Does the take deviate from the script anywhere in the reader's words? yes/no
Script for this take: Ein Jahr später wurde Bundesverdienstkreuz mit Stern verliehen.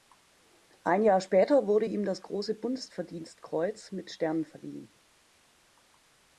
yes